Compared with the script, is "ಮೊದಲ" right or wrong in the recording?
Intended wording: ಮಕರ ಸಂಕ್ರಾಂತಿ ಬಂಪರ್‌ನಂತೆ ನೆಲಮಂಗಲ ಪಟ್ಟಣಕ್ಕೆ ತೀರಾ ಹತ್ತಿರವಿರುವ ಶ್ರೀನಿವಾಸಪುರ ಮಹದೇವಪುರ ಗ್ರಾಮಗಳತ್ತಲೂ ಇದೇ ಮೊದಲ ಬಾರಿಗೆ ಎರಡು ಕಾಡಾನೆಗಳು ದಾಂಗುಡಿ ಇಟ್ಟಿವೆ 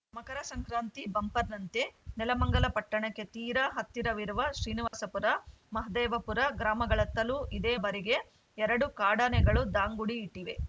wrong